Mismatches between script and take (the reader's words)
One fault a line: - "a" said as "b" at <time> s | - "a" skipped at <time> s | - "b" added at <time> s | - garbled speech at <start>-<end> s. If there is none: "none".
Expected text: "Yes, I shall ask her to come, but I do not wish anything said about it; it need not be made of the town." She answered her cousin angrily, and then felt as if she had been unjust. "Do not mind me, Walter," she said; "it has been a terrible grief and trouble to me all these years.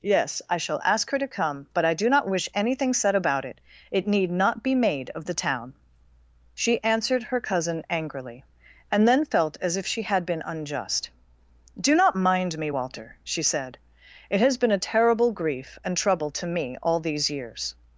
none